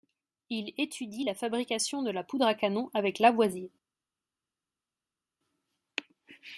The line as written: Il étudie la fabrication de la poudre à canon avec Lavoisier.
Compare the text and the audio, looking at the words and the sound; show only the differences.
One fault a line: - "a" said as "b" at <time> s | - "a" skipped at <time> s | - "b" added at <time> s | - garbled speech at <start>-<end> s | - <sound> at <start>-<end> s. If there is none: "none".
none